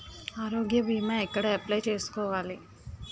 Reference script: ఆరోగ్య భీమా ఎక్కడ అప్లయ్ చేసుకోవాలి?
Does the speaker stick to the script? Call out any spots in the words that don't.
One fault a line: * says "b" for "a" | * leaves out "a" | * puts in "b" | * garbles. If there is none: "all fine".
all fine